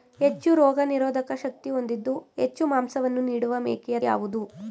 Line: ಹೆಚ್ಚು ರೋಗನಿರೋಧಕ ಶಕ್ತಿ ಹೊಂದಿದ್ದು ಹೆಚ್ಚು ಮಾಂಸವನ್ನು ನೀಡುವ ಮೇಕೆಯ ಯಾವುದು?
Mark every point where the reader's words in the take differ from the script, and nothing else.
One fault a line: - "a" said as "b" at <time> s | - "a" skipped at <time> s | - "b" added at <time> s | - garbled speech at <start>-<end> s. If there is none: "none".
none